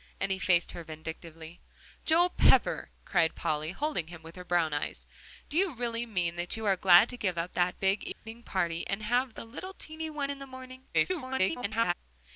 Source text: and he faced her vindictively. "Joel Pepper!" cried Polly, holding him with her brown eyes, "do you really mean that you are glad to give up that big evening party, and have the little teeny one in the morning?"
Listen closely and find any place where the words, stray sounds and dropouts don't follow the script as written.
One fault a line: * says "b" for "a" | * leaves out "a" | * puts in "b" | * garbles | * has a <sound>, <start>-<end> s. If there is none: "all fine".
* has a dropout, 8.1-8.3 s
* garbles